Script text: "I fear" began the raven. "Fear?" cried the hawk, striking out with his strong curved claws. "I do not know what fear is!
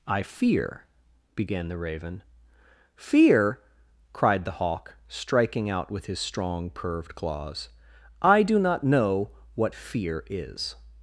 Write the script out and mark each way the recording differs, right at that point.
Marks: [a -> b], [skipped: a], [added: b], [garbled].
"I fear" began the raven. "Fear?" cried the hawk, striking out with his strong curved claws. "I do not know what fear is!